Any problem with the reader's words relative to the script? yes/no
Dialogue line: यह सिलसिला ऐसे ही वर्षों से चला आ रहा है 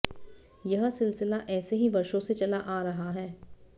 no